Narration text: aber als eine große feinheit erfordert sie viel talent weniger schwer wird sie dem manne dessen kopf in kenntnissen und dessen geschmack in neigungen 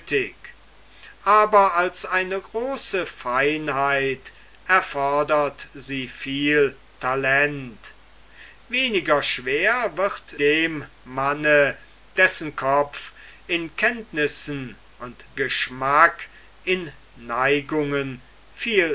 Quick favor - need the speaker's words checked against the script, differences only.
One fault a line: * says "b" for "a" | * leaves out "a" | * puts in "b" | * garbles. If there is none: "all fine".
* leaves out "sie"
* leaves out "dessen"